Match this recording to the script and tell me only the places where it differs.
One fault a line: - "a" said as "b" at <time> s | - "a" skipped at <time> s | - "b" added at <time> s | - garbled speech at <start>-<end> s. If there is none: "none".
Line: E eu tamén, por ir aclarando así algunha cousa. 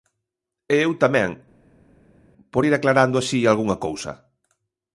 none